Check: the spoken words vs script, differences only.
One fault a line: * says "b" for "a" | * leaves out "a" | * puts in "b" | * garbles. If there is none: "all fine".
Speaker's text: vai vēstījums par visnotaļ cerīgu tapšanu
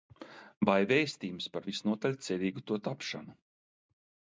* puts in "to"